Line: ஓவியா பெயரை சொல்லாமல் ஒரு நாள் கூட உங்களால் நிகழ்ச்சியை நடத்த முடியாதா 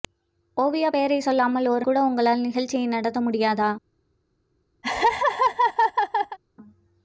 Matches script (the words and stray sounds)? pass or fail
fail